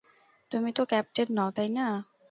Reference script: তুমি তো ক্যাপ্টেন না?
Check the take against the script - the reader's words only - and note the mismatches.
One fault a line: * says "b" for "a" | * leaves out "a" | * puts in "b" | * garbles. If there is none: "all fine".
* puts in "নও তাই"